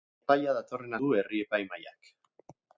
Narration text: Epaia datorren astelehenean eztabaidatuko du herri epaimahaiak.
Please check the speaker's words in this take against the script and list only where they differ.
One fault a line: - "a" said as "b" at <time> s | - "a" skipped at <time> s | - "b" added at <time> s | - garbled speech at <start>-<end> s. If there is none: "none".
- "astelehenean eztabaidatuko" skipped at 1.0 s